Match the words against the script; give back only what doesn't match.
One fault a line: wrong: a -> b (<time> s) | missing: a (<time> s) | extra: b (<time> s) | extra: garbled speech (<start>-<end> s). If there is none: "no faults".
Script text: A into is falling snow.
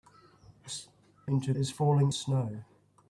no faults